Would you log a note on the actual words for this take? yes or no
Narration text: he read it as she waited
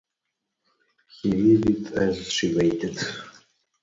no